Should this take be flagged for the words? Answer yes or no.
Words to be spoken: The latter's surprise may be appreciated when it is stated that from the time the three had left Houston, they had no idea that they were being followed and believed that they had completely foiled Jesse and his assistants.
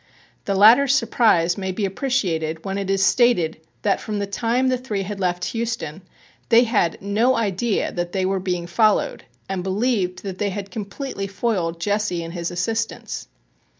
no